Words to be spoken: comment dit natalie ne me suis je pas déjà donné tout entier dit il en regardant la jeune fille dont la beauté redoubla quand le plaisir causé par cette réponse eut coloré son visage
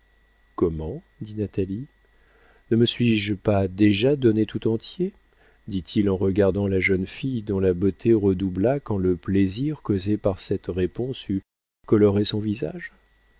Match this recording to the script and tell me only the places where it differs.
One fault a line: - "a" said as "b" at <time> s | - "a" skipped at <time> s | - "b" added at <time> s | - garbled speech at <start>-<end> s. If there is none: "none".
none